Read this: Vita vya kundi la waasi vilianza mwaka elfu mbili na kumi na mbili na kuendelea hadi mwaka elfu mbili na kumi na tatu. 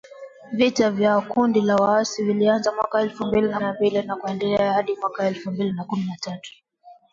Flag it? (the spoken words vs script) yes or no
yes